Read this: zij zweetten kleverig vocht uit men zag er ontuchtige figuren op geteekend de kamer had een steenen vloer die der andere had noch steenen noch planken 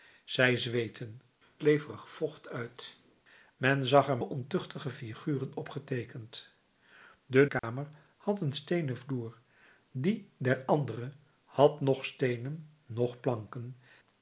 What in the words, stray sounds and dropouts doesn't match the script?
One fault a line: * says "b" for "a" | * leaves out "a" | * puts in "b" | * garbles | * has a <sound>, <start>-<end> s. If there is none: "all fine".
* has a dropout, 7.6-7.6 s